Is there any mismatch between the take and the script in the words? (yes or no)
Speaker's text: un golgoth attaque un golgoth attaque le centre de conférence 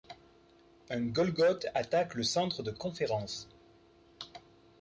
yes